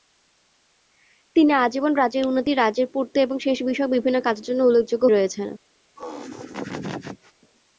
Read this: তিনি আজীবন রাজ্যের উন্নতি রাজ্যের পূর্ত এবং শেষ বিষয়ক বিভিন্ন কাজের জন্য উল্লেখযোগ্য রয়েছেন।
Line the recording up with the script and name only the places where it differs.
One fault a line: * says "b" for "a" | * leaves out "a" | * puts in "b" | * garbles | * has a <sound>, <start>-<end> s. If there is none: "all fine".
* has a laugh, 6.0-7.3 s